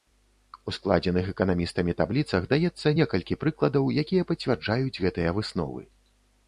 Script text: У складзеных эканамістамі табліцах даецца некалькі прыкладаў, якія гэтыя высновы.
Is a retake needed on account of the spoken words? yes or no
yes